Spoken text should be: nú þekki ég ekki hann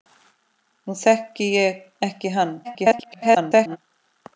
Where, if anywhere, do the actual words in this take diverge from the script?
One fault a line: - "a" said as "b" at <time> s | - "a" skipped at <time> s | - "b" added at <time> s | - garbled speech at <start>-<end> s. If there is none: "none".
- garbled speech at 2.6-3.8 s